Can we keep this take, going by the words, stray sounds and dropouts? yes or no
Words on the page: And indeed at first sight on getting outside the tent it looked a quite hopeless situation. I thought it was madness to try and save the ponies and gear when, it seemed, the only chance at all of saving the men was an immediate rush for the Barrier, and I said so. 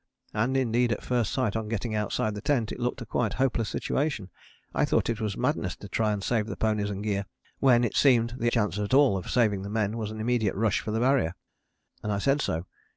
no